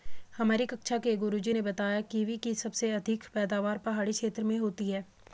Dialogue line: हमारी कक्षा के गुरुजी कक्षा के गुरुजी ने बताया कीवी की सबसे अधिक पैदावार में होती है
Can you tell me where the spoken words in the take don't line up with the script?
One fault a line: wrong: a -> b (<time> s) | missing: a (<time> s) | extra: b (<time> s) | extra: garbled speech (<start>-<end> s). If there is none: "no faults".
missing: कक्षा के गुरुजी (1.5 s)
extra: पहाड़ी क्षेत्र (3.8 s)